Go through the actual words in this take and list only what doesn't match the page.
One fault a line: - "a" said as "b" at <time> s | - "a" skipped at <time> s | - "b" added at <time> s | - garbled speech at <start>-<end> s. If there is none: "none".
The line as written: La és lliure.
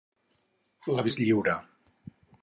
none